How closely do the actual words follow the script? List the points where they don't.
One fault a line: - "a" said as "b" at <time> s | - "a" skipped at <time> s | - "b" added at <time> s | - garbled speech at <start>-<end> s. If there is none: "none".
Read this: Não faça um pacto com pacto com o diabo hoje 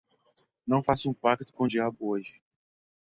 - "pacto com" skipped at 1.7 s